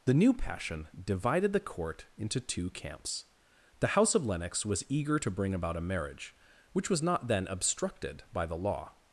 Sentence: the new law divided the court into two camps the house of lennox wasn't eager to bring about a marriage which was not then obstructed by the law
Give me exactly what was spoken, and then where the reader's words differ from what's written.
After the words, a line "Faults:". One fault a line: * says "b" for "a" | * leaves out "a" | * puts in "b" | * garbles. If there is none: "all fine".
the new passion divided the court into two camps the house of lennox was eager to bring about a marriage which was not then obstructed by the law
Faults:
* says "passion" for "law"
* says "was" for "wasn't"